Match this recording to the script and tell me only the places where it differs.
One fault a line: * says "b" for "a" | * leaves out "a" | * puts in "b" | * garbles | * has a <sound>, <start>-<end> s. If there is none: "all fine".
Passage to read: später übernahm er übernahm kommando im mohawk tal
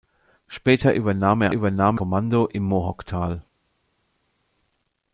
all fine